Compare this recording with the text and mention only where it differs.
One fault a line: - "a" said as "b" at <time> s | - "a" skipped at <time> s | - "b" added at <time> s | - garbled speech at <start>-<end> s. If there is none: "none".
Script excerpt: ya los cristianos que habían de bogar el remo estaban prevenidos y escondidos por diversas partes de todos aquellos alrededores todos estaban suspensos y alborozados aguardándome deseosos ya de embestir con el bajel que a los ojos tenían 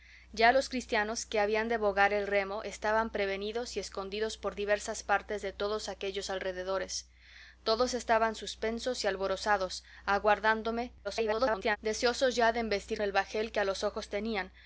- garbled speech at 11.0-11.8 s
- "con" skipped at 13.0 s